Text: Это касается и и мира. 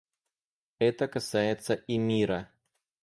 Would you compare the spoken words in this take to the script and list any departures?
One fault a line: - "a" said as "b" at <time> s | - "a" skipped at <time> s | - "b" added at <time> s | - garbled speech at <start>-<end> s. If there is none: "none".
- "и" skipped at 2.0 s